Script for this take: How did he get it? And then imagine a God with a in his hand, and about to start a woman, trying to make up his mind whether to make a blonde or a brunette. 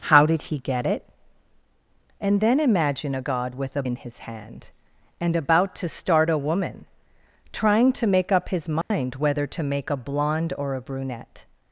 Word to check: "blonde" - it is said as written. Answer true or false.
true